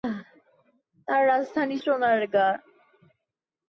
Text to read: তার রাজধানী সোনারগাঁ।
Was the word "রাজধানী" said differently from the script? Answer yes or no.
no